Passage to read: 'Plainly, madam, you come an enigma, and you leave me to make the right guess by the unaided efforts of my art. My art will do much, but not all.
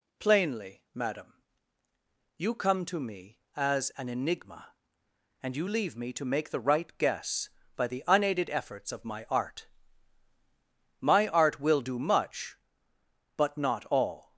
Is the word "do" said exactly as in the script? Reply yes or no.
yes